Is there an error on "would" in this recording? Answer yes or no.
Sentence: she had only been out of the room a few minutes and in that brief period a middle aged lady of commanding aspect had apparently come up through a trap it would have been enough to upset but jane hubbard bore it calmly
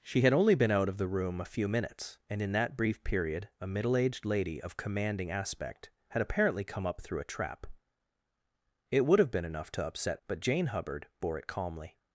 no